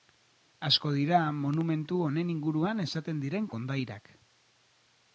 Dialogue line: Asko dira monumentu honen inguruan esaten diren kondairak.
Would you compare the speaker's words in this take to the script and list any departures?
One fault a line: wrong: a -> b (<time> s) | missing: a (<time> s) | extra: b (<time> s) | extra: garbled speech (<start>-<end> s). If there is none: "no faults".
no faults